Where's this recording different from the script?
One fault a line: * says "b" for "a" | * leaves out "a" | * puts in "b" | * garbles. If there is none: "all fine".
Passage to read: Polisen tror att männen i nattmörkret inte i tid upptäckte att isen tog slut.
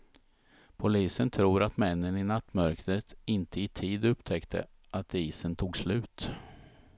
all fine